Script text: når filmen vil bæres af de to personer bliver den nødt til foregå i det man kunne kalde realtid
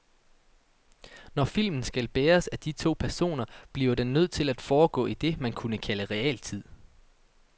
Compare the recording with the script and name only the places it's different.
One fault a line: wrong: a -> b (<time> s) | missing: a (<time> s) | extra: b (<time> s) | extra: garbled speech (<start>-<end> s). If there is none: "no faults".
wrong: vil -> skal (1.8 s)
extra: at (4.5 s)